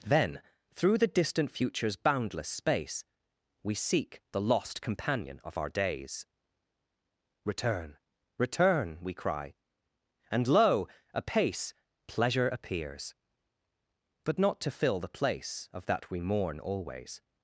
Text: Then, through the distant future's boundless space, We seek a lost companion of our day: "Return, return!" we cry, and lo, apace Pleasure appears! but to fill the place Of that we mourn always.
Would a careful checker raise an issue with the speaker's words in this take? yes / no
yes